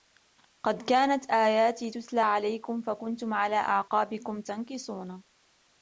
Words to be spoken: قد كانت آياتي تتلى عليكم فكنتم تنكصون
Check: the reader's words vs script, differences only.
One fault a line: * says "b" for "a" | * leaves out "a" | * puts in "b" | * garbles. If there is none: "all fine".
* puts in "على أعقابكم"